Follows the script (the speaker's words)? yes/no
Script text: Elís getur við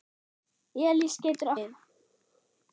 yes